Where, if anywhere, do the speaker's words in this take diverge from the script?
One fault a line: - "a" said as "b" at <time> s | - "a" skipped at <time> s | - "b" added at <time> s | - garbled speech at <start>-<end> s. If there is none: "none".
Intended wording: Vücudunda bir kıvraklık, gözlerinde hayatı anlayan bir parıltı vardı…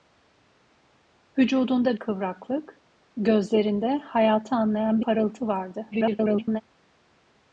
- "bir" skipped at 2.0 s
- "bir" skipped at 5.0 s
- garbled speech at 5.9-6.6 s